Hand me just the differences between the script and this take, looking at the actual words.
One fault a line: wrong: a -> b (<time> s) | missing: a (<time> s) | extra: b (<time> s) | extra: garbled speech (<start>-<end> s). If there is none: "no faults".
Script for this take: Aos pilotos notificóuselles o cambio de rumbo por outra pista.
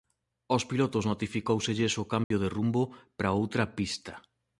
wrong: por -> para (3.2 s)